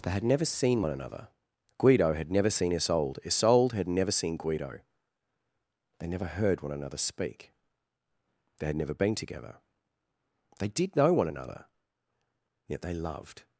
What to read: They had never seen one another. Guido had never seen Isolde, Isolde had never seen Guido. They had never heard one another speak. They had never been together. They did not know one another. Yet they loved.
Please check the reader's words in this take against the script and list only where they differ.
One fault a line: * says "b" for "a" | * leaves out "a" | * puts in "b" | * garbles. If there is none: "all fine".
* leaves out "had"
* leaves out "not"